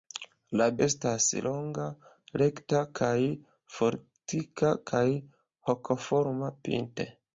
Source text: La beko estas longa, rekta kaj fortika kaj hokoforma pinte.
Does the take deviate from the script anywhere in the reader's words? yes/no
yes